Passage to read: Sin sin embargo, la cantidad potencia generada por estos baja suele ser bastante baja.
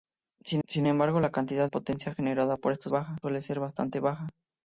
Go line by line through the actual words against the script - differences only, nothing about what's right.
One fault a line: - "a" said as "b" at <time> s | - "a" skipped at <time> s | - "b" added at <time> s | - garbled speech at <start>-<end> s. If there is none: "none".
none